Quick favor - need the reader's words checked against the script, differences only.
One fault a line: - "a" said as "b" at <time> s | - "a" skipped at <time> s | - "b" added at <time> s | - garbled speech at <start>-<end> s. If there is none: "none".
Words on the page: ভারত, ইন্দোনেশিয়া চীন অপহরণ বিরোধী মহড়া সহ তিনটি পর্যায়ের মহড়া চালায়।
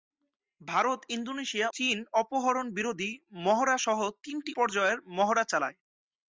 none